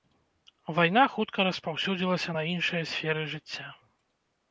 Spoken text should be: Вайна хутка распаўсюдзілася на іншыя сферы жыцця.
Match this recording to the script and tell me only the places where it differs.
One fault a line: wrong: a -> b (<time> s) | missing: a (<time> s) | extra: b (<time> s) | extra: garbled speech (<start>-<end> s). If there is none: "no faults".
no faults